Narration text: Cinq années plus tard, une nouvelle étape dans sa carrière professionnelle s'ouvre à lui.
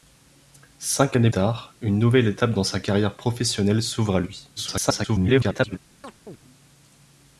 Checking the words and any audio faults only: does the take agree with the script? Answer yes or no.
no